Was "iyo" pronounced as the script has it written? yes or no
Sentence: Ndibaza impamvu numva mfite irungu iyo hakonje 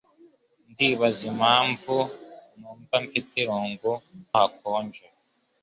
no